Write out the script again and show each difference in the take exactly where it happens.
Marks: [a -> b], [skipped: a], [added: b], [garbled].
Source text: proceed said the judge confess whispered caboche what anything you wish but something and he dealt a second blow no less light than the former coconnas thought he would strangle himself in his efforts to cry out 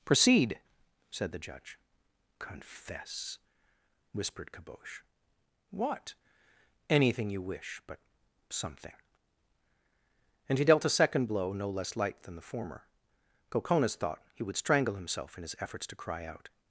proceed said the judge confess whispered caboche what anything you wish but something and he dealt a second blow no less light than the former coconnas thought he would strangle himself in his efforts to cry out